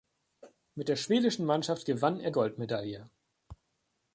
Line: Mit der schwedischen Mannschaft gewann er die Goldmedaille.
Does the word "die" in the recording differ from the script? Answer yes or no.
yes